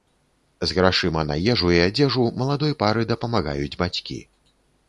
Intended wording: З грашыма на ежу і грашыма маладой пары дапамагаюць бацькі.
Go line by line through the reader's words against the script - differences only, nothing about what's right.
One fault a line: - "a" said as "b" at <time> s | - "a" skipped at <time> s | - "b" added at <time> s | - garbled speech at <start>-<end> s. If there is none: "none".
- "грашыма" said as "адзежу" at 1.9 s